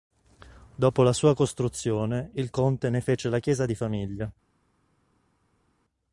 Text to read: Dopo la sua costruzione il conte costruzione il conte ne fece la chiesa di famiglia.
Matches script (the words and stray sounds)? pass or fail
fail